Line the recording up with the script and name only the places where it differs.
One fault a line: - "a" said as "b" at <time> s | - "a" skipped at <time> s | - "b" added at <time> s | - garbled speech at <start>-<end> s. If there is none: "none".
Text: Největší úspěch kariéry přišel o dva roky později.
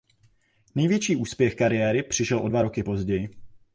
none